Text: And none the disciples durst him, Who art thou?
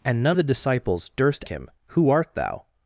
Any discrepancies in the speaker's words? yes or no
no